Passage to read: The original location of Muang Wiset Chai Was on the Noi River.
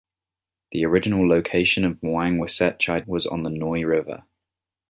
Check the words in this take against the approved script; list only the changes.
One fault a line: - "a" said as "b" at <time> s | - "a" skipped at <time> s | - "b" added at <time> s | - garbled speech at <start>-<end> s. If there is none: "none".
none